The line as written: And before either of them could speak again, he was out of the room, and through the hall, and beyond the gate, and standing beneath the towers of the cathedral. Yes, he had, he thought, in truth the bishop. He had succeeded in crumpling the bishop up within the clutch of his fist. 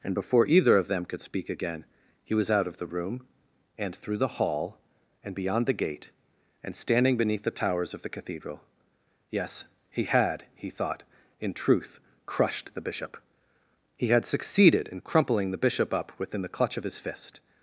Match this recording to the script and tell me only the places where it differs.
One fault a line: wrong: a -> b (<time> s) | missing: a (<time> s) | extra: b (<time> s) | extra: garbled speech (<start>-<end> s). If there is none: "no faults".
extra: crushed (12.2 s)